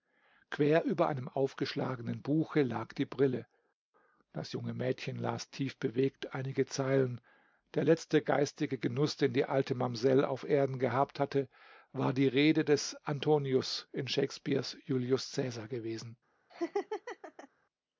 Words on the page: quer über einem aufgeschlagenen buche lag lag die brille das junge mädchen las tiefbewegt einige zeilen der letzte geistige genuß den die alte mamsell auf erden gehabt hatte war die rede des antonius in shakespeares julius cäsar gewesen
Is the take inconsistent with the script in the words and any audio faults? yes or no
yes